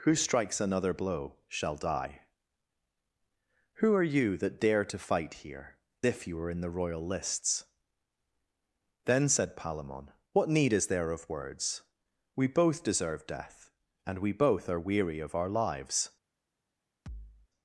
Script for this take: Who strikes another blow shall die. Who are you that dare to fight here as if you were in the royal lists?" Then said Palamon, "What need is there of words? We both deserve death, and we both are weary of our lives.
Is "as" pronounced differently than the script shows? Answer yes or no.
yes